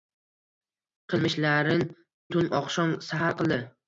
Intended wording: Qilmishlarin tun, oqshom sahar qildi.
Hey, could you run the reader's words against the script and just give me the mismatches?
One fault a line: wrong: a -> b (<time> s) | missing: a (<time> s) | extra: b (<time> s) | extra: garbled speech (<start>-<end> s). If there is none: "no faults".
no faults